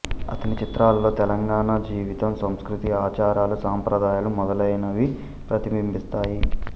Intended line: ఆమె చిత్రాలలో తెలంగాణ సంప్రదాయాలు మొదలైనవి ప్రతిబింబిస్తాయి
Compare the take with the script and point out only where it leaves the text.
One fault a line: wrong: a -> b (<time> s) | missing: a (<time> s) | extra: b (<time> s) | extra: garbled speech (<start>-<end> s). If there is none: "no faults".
wrong: ఆమె -> అతని (0.3 s)
extra: జీవితం సంస్కృతి ఆచారాలు (1.9 s)